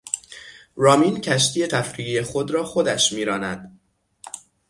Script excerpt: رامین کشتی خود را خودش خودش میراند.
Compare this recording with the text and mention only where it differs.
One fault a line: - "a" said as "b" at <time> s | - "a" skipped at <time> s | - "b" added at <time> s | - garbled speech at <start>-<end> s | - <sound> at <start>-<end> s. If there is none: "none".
- "تفریحی" added at 1.7 s
- "خودش" skipped at 3.1 s